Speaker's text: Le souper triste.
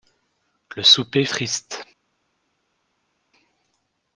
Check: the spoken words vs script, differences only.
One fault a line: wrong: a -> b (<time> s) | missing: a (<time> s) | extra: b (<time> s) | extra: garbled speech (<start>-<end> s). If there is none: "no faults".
no faults